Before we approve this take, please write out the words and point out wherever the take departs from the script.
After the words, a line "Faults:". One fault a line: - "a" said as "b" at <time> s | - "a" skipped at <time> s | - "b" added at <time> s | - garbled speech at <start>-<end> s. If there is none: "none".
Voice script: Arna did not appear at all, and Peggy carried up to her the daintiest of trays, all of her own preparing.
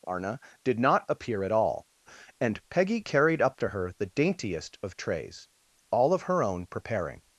Arna did not appear at all, and Peggy carried up to her the daintiest of trays, all of her own preparing.
Faults:
none